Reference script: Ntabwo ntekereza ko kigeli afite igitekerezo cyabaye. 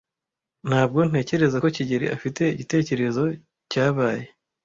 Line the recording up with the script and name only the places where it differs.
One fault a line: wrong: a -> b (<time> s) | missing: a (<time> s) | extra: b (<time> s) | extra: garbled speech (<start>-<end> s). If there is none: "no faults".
no faults